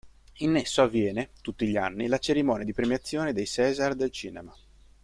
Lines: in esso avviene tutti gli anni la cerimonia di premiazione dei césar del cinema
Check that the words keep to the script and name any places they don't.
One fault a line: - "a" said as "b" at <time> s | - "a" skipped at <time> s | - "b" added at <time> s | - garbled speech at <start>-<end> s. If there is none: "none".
none